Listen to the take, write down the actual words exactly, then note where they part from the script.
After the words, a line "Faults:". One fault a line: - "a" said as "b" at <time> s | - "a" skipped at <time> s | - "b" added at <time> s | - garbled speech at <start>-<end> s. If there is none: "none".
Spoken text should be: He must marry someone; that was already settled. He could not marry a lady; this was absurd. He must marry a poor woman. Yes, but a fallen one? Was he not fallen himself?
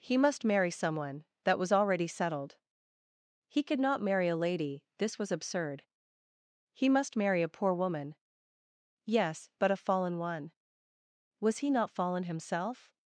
He must marry someone; that was already settled. He could not marry a lady; this was absurd. He must marry a poor woman. Yes, but a fallen one? Was he not fallen himself?
Faults:
none